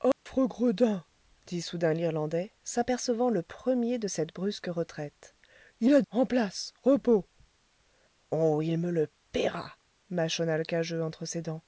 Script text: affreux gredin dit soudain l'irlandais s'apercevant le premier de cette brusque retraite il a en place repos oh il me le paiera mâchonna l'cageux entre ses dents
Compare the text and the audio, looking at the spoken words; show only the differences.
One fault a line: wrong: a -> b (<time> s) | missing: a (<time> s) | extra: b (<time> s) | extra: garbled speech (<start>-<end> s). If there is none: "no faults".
no faults